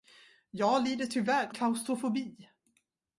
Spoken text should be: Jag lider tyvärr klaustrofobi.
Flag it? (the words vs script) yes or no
no